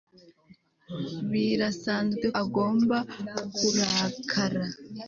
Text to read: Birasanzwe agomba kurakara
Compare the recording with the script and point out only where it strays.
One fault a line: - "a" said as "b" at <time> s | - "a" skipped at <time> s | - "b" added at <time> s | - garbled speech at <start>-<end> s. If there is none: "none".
none